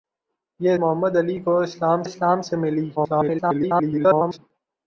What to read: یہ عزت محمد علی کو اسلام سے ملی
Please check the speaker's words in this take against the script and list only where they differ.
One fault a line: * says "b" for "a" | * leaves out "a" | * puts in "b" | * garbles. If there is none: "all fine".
* leaves out "عزت"
* puts in "اسلام"
* garbles